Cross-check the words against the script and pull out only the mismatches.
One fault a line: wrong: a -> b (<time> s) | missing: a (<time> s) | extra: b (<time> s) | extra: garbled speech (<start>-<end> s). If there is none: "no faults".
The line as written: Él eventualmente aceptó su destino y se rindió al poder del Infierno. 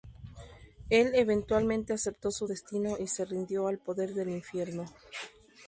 no faults